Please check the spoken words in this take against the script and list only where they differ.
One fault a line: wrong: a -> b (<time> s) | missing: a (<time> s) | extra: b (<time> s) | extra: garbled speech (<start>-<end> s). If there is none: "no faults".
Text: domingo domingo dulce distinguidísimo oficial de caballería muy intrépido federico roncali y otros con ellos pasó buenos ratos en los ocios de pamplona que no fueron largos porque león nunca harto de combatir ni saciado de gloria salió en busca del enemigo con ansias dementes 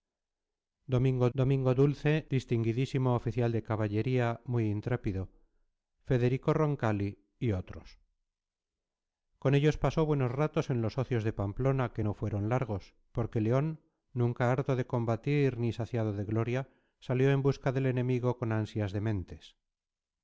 no faults